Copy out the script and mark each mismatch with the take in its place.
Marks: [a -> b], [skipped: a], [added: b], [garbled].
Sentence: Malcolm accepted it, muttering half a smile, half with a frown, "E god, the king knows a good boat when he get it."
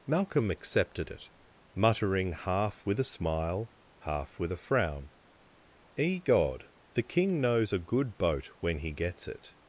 Malcolm accepted it, muttering half [added: with] a smile, half with a frown, "E god, the king knows a good boat when he [get -> gets] it."